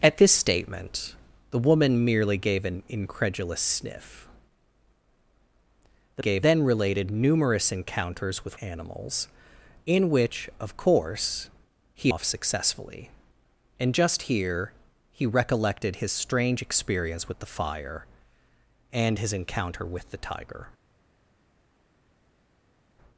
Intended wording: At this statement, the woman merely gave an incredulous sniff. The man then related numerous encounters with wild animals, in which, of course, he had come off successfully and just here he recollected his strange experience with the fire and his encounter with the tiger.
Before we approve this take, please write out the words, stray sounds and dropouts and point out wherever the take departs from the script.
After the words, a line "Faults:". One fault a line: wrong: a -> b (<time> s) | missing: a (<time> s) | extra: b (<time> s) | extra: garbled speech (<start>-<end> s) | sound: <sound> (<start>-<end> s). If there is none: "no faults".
At this statement, the woman merely gave an incredulous sniff. The gave then related numerous encounters with animals, in which, of course, he off successfully and just here he recollected his strange experience with the fire and his encounter with the tiger.
Faults:
wrong: man -> gave (6.2 s)
missing: wild (8.6 s)
missing: had come (12.1 s)